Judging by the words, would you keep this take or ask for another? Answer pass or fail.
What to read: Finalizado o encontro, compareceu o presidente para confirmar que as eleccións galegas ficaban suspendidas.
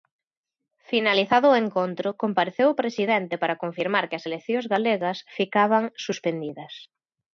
pass